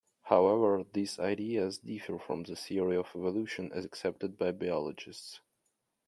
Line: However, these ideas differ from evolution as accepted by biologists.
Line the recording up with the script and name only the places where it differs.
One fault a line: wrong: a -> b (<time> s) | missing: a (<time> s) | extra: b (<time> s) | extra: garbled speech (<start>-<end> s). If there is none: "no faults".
extra: the theory of (2.4 s)